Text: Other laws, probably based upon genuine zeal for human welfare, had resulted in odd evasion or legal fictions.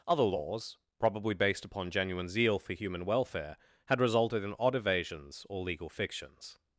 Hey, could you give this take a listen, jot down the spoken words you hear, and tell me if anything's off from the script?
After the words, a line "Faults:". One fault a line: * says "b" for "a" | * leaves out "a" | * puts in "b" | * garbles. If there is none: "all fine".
Other laws, probably based upon genuine zeal for human welfare, had resulted in odd evasions or legal fictions.
Faults:
* says "evasions" for "evasion"